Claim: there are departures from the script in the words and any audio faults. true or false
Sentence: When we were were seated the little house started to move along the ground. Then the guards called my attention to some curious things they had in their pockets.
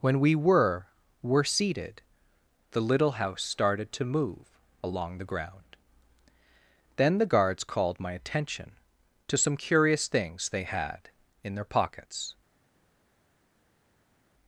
false